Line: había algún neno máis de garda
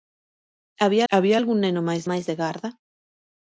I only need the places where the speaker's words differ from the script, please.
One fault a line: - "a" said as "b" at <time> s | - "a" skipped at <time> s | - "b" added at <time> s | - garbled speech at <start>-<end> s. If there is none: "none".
- "había" added at 1.1 s
- "máis" added at 2.1 s